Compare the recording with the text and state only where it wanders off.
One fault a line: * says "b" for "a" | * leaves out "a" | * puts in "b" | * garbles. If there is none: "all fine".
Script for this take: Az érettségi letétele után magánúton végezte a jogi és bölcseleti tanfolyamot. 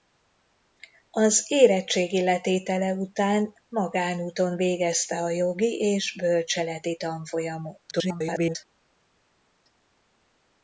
* garbles